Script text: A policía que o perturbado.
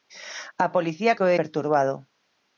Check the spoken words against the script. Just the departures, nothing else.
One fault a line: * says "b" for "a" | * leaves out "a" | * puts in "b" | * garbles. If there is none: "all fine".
all fine